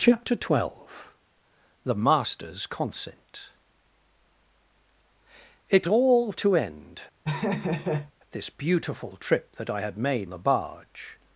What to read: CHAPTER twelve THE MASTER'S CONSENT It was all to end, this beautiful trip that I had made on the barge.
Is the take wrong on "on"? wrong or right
wrong